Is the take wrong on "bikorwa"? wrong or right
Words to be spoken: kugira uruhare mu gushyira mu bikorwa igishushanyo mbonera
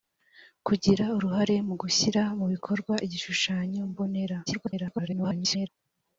right